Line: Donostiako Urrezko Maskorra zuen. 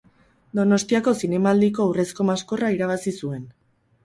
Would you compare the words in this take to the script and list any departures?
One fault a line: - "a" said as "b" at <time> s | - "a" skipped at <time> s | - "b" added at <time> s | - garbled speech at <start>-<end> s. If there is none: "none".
- "Zinemaldiko" added at 1.2 s
- "irabazi" added at 2.8 s